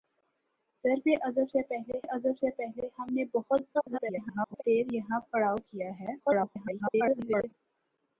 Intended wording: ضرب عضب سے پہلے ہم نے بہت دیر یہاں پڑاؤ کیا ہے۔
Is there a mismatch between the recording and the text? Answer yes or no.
yes